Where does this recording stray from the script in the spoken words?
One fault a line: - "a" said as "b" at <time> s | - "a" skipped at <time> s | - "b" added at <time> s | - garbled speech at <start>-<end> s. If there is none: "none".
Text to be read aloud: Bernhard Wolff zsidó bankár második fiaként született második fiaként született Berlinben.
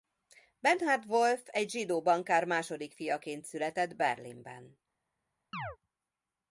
- "egy" added at 1.4 s
- "második fiaként született" skipped at 4.0 s